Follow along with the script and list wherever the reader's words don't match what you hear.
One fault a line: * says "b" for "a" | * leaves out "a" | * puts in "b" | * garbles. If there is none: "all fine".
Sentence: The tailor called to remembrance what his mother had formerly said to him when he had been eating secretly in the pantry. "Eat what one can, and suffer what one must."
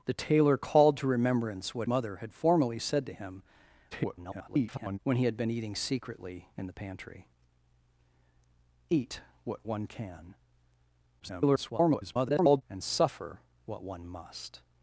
* leaves out "his"
* garbles
* garbles